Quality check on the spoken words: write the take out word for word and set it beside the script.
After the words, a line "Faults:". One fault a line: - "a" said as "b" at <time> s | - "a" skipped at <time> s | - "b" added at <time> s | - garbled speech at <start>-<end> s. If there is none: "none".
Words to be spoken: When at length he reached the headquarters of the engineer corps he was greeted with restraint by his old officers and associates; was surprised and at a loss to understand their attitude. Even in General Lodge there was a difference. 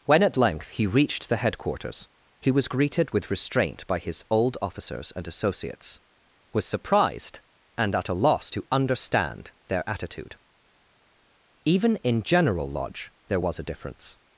When at length he reached the headquarters he was greeted with restraint by his old officers and associates; was surprised and at a loss to understand their attitude. Even in General Lodge there was a difference.
Faults:
- "of the engineer corps" skipped at 2.1 s